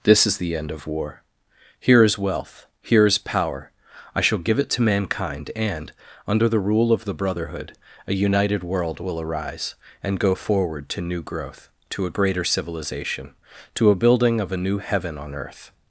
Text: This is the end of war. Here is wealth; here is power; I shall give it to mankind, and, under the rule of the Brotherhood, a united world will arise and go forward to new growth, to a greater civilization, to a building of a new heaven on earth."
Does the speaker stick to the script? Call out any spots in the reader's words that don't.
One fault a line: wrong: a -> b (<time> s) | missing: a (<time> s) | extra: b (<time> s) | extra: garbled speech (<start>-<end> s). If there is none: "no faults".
no faults